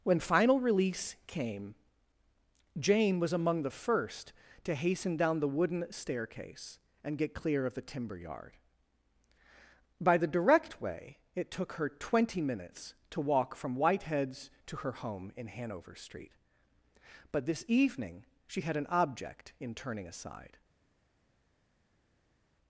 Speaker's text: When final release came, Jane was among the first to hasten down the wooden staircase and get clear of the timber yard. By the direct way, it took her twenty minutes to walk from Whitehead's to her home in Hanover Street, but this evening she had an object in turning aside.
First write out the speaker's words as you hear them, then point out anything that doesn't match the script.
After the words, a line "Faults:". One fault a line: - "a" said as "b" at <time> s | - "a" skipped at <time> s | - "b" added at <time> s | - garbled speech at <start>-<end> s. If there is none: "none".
When final release came, Jane was among the first to hasten down the wooden staircase and get clear of the timber yard. By the direct way, it took her twenty minutes to walk from Whitehead's to her home in Hanover Street, but this evening she had an object in turning aside.
Faults:
none